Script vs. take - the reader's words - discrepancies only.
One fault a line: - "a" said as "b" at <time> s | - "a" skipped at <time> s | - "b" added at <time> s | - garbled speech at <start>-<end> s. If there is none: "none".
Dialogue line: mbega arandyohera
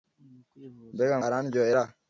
none